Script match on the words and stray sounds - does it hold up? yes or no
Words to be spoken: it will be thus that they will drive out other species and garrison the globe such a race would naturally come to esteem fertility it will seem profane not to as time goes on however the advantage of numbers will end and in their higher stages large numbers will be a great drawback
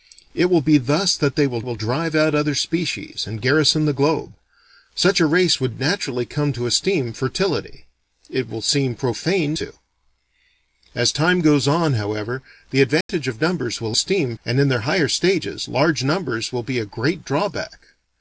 no